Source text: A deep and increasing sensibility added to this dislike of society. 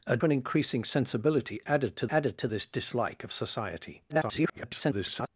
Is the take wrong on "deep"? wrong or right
wrong